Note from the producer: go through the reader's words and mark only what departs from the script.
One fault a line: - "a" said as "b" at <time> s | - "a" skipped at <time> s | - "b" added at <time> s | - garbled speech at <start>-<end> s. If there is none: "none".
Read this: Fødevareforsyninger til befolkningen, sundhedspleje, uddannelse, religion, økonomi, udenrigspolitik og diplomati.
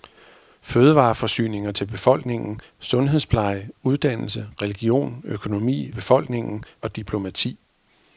- "udenrigspolitik" said as "befolkningen" at 5.9 s